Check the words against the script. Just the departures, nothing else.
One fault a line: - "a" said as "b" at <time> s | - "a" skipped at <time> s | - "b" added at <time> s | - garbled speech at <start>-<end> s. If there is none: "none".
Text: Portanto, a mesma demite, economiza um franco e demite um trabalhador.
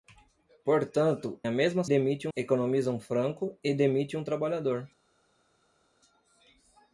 none